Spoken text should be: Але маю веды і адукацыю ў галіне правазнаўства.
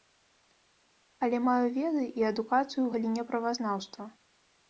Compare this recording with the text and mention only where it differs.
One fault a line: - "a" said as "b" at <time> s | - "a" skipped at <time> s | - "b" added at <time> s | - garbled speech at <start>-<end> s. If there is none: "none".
none